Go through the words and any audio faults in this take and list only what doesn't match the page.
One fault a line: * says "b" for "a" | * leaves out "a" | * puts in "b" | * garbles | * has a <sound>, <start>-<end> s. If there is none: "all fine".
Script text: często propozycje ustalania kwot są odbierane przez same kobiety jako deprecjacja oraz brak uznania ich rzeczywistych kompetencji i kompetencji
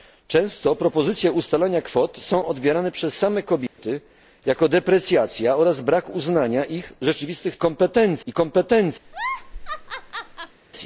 * has a dropout, 3.7-3.8 s
* has a laugh, 9.0-10.6 s